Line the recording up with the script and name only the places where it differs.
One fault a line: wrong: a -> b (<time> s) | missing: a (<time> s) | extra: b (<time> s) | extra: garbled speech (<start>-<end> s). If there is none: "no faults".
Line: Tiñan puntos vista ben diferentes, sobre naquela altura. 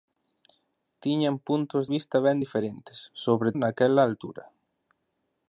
no faults